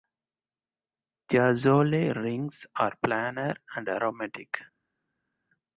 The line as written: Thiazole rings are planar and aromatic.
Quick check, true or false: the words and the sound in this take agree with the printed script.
true